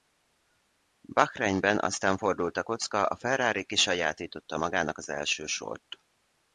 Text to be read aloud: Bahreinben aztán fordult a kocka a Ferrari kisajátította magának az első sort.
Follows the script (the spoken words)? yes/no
yes